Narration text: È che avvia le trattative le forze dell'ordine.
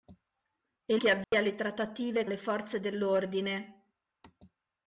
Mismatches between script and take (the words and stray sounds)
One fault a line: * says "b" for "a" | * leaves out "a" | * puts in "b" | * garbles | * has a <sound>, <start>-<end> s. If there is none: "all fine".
* has a dropout, 1.2-1.3 s